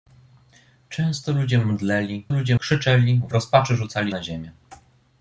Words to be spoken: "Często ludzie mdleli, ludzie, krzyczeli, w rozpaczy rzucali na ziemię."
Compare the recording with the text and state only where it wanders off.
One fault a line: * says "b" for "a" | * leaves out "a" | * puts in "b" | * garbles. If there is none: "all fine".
all fine